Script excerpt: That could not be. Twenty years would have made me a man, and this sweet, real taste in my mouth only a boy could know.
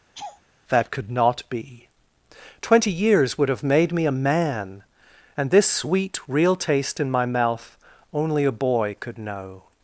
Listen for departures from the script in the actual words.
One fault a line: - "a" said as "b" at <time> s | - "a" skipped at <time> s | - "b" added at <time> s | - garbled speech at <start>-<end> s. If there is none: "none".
none